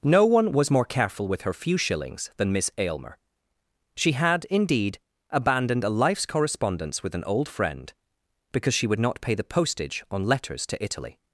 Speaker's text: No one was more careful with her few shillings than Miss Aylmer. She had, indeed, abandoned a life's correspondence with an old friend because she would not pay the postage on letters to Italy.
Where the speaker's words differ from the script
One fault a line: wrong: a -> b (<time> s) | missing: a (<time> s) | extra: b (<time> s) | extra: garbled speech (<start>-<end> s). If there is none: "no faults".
no faults